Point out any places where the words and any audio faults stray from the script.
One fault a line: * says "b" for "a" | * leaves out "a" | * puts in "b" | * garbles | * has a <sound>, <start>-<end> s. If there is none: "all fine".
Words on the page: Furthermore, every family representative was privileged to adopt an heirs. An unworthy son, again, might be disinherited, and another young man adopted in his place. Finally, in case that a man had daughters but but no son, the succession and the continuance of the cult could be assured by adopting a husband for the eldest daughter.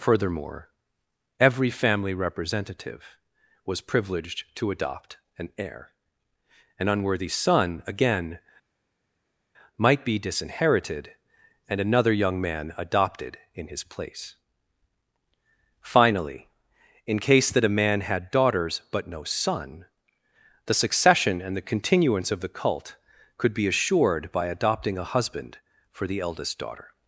* says "heir" for "heirs"
* leaves out "but"